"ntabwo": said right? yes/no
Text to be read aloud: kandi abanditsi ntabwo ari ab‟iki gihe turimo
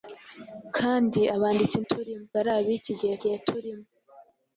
no